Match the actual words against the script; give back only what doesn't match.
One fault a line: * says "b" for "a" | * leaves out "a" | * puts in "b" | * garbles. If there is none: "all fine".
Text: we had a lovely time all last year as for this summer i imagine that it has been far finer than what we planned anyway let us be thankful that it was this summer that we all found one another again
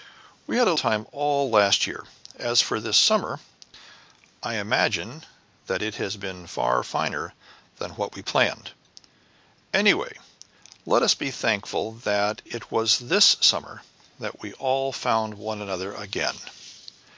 * leaves out "lovely"